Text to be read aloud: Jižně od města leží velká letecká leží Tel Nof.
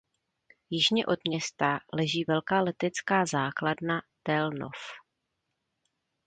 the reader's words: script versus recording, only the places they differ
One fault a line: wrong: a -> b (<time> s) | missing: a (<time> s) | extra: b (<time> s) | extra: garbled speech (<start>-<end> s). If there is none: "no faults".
wrong: leží -> základna (3.2 s)